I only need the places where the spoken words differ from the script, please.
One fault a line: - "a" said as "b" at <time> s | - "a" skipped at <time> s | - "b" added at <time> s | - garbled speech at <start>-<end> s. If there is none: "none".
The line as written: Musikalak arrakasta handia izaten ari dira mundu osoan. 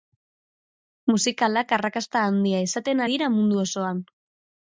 - "ari" skipped at 3.0 s